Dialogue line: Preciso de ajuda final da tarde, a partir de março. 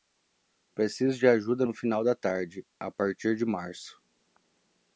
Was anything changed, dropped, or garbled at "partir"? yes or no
no